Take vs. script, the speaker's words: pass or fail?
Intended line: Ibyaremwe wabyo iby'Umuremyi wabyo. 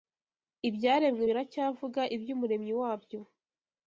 fail